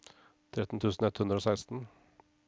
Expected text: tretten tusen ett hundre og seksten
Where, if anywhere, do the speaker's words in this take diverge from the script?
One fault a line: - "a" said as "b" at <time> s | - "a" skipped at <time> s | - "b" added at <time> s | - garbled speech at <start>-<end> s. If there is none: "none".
none